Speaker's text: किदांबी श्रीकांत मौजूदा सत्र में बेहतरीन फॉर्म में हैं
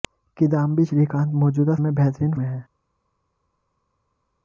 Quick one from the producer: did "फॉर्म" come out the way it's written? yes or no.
no